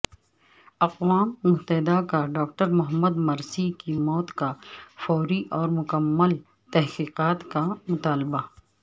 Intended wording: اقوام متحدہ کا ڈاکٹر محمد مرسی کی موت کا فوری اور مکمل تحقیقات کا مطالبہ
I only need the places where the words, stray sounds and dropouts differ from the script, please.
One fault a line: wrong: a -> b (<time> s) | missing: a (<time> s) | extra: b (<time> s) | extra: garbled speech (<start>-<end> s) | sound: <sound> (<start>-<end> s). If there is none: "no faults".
no faults